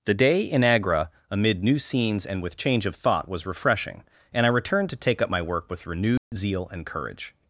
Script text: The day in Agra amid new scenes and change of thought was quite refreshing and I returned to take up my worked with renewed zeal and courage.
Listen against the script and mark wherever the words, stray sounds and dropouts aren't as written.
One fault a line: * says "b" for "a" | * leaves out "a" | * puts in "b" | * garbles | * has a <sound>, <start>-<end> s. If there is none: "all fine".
* puts in "with"
* leaves out "quite"
* says "work" for "worked"
* has a dropout, 6.2-6.3 s